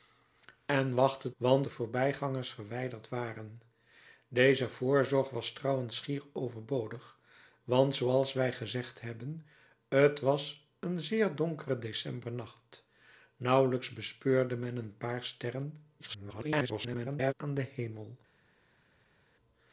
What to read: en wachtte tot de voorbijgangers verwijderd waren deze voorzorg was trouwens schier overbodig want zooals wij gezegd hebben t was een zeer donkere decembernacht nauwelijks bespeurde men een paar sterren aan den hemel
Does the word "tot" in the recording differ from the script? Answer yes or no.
yes